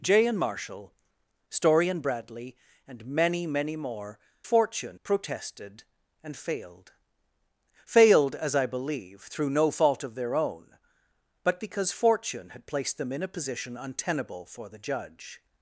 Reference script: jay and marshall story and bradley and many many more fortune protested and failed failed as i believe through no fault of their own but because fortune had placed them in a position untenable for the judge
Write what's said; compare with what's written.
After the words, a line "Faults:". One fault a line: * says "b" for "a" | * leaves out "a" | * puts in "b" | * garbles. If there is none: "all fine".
jay and marshall story and bradley and many many more fortune protested and failed failed as i believe through no fault of their own but because fortune had placed them in a position untenable for the judge
Faults:
all fine